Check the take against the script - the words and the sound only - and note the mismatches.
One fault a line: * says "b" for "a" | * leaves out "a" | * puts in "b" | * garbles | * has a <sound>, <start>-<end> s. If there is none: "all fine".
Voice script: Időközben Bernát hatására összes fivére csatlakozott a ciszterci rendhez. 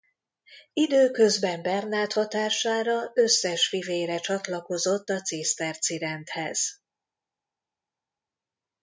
all fine